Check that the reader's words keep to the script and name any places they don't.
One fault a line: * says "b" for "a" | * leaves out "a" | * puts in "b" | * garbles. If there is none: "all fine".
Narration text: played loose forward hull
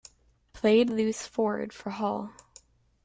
* puts in "for"